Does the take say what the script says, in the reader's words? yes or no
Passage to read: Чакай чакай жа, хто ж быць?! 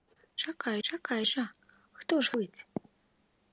yes